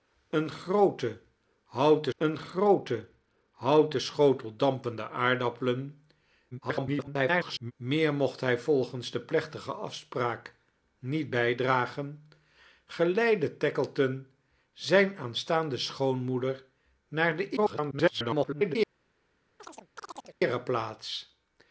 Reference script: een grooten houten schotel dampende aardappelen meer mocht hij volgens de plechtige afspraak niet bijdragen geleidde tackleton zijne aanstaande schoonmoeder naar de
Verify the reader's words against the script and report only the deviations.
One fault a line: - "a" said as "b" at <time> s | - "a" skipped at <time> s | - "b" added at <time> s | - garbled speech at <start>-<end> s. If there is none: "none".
- "een grooten houten" added at 2.2 s
- garbled speech at 6.5-7.7 s
- garbled speech at 17.6-18.8 s